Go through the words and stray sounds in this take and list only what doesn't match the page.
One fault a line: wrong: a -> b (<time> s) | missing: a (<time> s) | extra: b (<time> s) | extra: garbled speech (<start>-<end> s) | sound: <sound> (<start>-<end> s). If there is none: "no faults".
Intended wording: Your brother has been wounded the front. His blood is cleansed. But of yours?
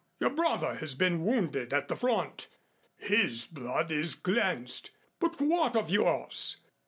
extra: at (1.7 s)
extra: what (5.4 s)